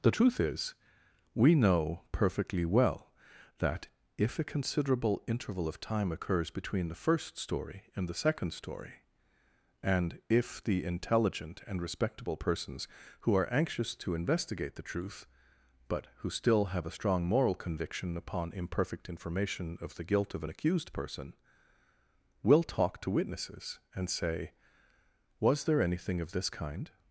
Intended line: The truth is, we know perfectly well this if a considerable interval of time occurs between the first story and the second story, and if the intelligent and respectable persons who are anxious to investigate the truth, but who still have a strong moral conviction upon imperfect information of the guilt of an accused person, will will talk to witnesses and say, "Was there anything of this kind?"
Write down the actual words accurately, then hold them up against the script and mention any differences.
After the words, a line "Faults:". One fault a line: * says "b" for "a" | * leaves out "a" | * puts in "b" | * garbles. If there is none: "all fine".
The truth is, we know perfectly well that if a considerable interval of time occurs between the first story and the second story, and if the intelligent and respectable persons who are anxious to investigate the truth, but who still have a strong moral conviction upon imperfect information of the guilt of an accused person, will talk to witnesses and say, "Was there anything of this kind?"
Faults:
* says "that" for "this"
* leaves out "will"